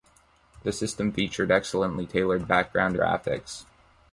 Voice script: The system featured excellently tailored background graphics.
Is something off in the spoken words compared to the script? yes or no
no